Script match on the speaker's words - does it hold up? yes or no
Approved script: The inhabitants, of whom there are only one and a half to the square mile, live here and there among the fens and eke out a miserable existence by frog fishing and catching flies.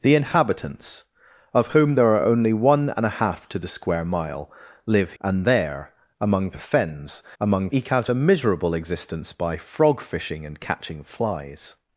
no